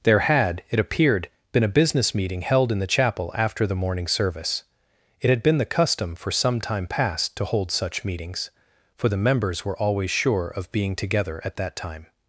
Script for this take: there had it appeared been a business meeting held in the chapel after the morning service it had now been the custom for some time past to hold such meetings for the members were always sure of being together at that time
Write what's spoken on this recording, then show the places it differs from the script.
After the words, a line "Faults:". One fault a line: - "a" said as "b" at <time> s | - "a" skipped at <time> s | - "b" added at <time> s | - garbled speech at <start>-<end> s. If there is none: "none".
there had it appeared been a business meeting held in the chapel after the morning service it had been the custom for some time past to hold such meetings for the members were always sure of being together at that time
Faults:
- "now" skipped at 5.4 s